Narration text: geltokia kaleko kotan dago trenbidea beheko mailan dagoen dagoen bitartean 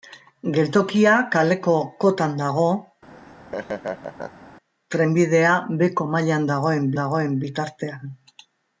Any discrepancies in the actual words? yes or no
no